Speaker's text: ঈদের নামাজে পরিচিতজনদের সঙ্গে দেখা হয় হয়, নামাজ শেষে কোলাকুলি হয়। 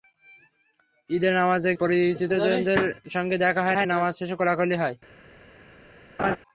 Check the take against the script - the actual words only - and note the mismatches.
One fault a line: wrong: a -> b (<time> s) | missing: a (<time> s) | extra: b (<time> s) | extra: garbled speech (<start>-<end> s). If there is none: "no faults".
no faults